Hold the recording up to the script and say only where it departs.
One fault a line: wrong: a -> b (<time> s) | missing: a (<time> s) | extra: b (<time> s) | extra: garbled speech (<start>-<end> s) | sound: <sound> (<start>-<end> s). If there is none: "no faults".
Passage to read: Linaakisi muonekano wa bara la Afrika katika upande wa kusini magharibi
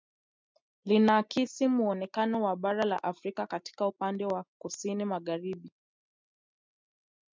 no faults